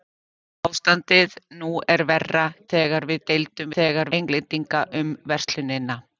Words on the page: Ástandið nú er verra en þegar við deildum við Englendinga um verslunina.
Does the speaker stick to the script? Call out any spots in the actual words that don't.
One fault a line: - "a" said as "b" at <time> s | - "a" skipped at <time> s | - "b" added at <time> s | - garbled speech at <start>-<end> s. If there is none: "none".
- "en" skipped at 2.5 s
- "við" said as "þegar" at 3.8 s